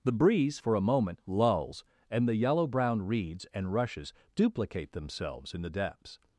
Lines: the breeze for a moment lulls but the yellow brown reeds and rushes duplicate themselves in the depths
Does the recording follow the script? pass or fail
fail